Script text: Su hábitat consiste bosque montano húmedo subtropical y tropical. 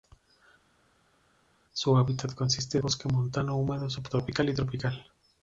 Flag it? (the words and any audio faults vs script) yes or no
no